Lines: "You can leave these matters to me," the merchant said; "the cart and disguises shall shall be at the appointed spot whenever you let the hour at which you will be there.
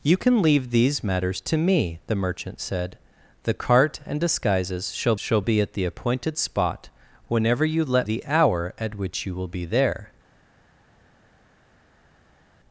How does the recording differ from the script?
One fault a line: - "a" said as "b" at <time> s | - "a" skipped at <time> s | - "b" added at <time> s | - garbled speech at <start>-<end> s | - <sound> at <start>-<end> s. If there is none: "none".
none